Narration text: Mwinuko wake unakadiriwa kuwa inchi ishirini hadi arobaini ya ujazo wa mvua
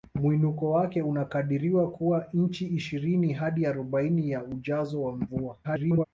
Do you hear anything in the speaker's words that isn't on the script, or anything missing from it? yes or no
yes